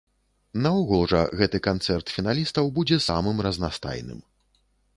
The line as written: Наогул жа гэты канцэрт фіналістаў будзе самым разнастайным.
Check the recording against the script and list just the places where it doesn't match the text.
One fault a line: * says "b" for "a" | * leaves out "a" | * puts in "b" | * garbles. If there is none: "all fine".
all fine